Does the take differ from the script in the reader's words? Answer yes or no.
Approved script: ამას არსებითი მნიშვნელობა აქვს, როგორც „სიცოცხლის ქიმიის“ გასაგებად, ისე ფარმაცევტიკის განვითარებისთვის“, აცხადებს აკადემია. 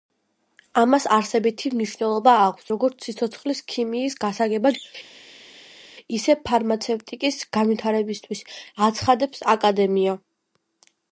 no